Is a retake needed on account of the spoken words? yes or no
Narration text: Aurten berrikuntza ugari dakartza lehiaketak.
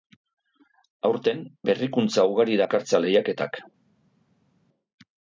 no